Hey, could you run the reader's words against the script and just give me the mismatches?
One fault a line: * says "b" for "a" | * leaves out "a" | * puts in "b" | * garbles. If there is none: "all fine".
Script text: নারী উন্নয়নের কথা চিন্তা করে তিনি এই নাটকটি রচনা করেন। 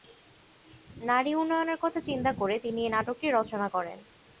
all fine